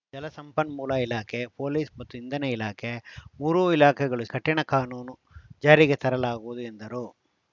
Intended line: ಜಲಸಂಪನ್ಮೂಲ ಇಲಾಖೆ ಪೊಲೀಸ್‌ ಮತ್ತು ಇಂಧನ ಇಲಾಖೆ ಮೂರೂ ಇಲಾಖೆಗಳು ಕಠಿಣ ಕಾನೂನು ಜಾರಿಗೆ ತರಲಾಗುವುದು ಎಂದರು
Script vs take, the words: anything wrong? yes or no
no